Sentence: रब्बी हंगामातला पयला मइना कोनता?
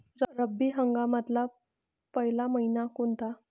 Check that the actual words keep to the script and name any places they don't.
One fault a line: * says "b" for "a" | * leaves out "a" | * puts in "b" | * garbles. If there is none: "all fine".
all fine